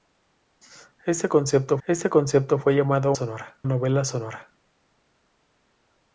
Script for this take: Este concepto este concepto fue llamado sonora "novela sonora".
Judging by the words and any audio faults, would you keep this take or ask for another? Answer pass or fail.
pass